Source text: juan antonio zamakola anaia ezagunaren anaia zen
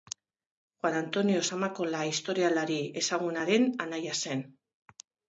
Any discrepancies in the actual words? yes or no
yes